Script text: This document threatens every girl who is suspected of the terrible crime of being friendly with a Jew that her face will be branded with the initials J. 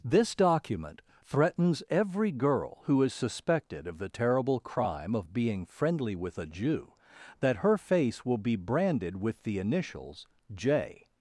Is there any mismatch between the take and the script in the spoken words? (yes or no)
no